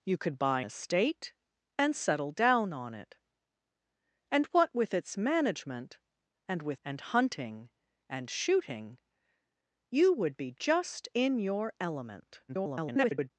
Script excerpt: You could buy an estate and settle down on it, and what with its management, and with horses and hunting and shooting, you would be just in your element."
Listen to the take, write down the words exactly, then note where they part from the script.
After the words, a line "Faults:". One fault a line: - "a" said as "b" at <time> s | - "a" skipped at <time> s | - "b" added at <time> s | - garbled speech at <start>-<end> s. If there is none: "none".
You could buy estate and settle down on it, and what with its management, and with and hunting and shooting, you would be just in your element." [garbled]
Faults:
- "an" skipped at 0.6 s
- "horses" skipped at 6.8 s
- garbled speech at 12.5-13.3 s